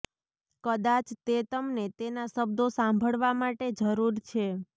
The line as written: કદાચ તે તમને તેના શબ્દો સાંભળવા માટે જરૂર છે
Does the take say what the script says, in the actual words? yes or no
yes